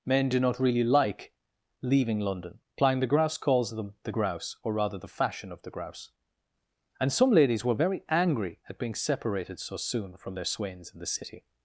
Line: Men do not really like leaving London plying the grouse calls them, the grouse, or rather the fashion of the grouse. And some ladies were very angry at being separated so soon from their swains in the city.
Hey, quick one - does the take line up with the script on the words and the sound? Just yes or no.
yes